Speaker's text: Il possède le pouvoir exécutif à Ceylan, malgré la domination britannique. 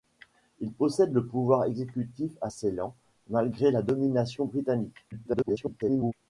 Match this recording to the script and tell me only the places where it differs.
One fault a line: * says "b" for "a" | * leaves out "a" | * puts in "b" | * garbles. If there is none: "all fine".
* garbles